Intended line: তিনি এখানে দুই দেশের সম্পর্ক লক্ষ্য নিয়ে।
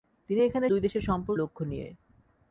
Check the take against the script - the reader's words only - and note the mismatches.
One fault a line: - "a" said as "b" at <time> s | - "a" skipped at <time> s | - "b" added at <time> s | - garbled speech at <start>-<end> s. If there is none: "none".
none